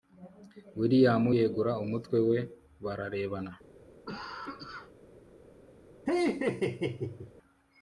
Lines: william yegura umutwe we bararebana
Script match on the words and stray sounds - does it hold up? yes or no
no